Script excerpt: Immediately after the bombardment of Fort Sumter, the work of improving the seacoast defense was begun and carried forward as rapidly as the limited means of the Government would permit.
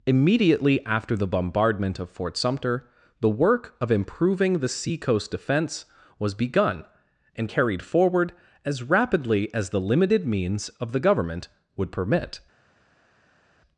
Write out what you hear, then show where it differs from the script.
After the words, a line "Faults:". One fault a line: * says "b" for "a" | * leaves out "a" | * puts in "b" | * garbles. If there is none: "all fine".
Immediately after the bombardment of Fort Sumter, the work of improving the seacoast defense was begun and carried forward as rapidly as the limited means of the Government would permit.
Faults:
all fine